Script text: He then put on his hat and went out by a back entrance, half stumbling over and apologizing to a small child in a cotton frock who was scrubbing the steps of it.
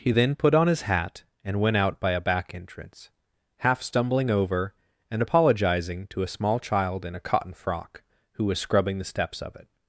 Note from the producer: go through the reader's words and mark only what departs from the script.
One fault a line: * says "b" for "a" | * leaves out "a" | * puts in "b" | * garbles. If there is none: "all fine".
all fine